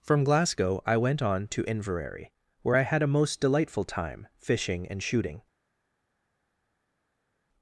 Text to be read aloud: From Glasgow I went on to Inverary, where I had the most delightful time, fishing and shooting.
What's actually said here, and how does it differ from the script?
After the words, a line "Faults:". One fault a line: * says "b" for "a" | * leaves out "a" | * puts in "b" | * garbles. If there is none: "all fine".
From Glasgow I went on to Inverary, where I had a most delightful time, fishing and shooting.
Faults:
* says "a" for "the"